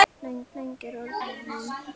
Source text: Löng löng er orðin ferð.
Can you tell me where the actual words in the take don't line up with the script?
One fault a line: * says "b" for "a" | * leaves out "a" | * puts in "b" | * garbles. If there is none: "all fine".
all fine